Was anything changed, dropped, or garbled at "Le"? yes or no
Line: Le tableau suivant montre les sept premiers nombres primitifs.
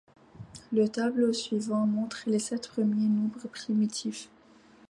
no